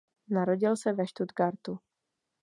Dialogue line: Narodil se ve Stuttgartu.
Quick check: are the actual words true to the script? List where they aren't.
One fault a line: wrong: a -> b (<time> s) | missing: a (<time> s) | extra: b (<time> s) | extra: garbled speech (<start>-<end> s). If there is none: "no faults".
no faults